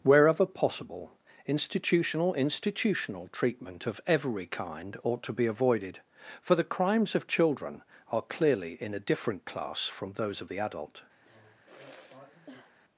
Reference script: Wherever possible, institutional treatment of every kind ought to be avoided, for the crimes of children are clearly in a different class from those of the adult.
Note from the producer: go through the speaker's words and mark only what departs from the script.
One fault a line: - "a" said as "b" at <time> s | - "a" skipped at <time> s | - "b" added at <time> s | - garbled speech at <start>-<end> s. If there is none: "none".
- "institutional" added at 2.3 s